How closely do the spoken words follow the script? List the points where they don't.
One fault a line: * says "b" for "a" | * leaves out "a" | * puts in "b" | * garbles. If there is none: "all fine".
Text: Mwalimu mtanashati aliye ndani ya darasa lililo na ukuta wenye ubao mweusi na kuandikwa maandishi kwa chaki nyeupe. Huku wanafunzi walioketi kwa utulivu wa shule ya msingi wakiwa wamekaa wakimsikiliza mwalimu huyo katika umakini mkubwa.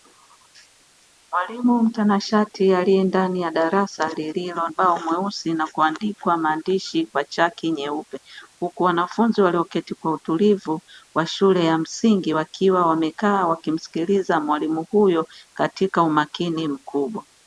* leaves out "na ukuta wenye"